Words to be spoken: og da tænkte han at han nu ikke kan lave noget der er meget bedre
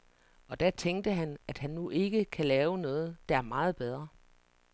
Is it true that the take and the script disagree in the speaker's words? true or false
false